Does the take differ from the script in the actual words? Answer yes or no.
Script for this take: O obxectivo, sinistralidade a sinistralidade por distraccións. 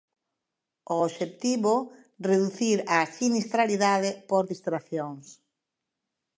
yes